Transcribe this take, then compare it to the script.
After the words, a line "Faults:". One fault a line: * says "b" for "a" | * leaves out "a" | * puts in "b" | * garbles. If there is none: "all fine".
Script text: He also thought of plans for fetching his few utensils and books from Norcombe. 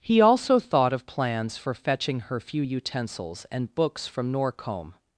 He also thought of plans for fetching her few utensils and books from Norcombe.
Faults:
* says "her" for "his"